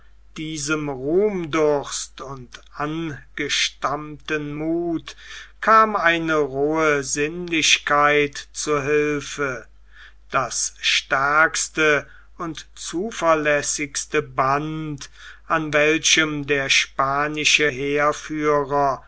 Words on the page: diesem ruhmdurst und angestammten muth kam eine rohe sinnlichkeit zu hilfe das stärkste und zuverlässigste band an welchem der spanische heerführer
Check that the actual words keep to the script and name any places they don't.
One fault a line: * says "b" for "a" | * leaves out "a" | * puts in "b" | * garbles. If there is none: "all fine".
all fine